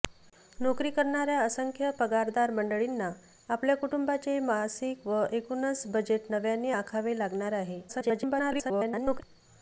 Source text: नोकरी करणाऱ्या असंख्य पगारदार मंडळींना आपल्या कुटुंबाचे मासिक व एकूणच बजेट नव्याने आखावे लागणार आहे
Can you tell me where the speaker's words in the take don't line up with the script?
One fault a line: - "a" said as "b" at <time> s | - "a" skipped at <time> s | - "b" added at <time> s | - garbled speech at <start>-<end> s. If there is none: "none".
- garbled speech at 7.9-9.2 s